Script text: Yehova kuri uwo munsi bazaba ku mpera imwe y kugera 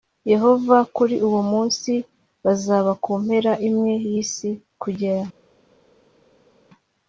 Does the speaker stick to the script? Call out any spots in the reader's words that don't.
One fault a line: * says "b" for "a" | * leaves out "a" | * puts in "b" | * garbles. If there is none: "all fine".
* puts in "isi"